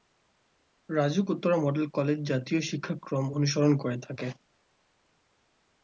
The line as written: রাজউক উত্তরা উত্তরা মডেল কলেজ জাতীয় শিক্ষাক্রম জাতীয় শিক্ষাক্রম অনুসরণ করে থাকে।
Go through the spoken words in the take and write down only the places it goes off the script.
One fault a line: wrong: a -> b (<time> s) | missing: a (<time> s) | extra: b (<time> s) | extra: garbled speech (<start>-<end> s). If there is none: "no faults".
missing: উত্তরা (1.6 s)
missing: জাতীয় শিক্ষাক্রম (3.2 s)